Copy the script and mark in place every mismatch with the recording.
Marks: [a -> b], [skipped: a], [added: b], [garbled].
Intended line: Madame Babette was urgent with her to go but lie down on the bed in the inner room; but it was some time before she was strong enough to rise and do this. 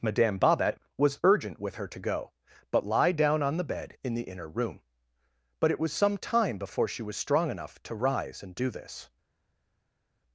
Madame Babette was urgent with her to go but lie down on the bed in the inner room; but it was some time before she was strong enough to rise and do this.